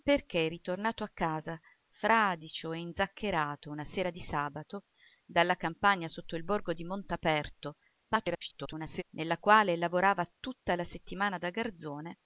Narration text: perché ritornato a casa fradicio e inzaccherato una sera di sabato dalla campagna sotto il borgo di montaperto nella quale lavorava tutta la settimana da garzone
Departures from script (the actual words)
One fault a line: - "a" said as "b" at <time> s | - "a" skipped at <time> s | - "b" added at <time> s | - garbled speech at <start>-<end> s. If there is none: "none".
- garbled speech at 8.1-9.0 s